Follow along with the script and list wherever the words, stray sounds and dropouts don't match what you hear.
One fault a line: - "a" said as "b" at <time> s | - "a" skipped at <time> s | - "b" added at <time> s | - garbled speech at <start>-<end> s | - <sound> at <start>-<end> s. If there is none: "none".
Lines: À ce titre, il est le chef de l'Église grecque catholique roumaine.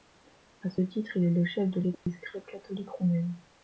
- dropout at 2.0-2.1 s